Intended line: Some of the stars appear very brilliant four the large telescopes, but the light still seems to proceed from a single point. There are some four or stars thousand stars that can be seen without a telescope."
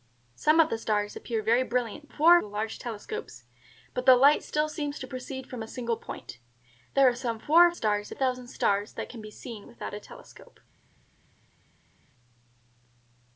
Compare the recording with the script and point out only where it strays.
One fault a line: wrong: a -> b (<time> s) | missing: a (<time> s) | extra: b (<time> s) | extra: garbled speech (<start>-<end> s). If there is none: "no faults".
no faults